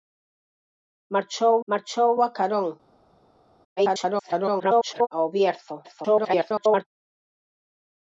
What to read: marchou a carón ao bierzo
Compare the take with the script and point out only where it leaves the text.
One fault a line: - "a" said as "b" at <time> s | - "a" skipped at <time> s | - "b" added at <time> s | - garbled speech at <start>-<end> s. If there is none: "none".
- "marchou" added at 1.7 s
- garbled speech at 3.8-5.1 s
- garbled speech at 5.8-6.9 s